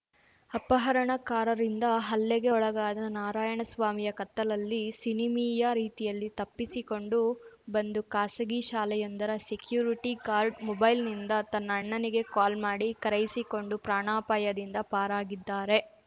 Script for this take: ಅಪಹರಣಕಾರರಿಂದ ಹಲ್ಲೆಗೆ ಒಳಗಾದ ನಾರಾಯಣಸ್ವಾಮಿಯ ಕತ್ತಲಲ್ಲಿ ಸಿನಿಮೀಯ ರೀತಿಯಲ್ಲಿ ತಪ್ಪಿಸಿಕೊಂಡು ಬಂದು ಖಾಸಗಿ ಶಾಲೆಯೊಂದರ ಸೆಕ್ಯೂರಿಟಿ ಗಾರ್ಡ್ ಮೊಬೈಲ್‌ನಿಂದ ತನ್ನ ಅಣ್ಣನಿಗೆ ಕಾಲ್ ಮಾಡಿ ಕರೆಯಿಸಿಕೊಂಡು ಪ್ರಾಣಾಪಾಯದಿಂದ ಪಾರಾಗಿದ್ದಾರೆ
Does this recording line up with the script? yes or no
yes